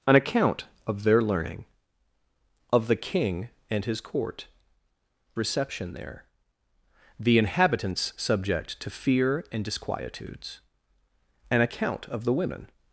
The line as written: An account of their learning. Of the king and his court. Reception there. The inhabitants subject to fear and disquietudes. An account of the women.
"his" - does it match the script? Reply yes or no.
yes